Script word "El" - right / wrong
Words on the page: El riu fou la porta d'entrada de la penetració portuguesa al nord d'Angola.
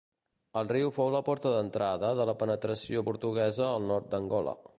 right